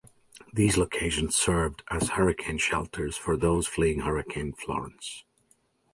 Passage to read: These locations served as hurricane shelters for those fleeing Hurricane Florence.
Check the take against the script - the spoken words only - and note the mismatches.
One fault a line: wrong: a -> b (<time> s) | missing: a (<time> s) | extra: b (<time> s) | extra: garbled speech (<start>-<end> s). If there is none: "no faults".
no faults